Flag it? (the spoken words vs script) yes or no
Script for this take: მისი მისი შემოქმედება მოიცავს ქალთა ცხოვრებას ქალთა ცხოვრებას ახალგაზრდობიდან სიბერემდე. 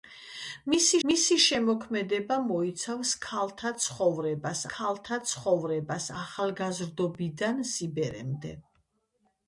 no